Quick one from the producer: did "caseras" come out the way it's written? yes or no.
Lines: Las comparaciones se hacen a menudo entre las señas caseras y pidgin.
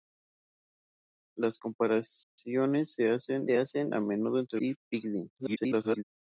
no